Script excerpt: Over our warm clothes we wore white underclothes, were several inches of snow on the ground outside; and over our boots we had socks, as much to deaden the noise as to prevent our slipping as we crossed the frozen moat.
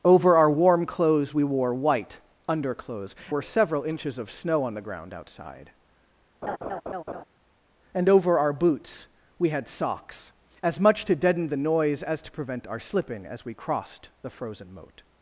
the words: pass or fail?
pass